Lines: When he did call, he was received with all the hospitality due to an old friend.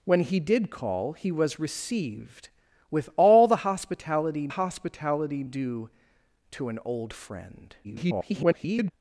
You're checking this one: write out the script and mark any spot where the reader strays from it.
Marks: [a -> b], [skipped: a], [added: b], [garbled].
When he did call, he was received with all the hospitality [added: hospitality] due to an old friend. [garbled]